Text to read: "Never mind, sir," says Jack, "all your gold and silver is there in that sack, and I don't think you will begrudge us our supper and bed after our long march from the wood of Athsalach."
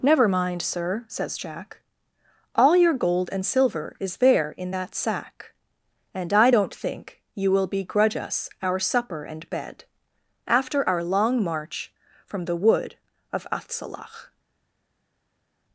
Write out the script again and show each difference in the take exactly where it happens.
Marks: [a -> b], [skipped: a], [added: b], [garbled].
"Never mind, sir," says Jack, "all your gold and silver is there in that sack, and I don't think you will begrudge us our supper and bed after our long march from the wood of Athsalach."